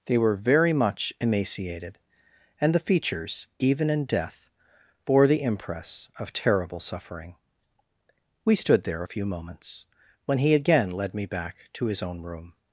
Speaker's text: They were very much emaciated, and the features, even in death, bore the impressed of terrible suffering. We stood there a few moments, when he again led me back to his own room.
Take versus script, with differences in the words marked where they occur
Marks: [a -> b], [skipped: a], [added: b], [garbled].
They were very much emaciated, and the features, even in death, bore the [impressed -> impress] of terrible suffering. We stood there a few moments, when he again led me back to his own room.